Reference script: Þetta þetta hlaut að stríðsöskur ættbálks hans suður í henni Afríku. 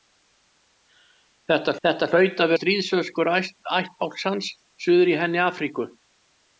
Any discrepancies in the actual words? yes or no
no